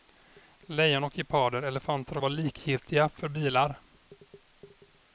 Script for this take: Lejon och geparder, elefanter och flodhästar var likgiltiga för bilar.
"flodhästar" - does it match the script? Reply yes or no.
no